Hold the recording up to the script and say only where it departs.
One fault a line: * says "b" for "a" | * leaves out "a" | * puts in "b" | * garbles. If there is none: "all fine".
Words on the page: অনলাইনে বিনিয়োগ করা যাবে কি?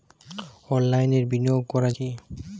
* leaves out "যাবে"